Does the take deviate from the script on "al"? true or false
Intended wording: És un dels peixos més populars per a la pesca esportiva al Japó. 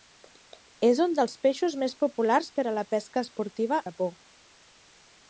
true